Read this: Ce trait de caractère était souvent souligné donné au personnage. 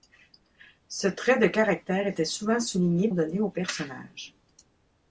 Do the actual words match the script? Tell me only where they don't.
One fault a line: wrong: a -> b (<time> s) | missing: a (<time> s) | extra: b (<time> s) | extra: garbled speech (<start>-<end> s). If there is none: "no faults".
no faults